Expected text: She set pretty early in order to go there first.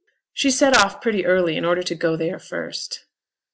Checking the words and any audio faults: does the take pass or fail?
fail